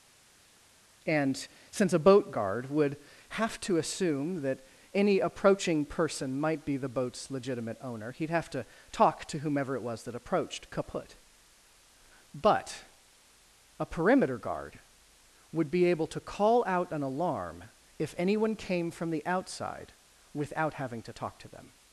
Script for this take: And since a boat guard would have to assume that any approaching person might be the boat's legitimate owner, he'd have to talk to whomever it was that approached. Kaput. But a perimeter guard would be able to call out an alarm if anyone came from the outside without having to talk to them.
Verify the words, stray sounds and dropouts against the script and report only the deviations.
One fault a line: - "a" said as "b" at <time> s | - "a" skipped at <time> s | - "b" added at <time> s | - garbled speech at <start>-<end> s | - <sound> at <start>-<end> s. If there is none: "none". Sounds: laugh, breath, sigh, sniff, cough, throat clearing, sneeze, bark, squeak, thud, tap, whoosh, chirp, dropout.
none